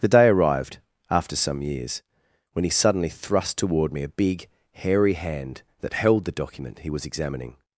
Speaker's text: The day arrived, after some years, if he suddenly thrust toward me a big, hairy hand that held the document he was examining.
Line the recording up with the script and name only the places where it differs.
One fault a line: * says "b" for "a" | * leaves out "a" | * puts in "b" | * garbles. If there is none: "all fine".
* says "when" for "if"